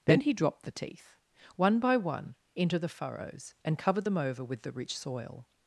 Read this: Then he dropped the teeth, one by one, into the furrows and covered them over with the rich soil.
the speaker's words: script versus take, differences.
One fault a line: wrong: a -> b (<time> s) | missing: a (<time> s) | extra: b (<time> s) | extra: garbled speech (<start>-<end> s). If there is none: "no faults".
no faults